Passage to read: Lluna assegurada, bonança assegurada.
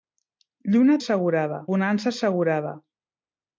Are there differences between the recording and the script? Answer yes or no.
no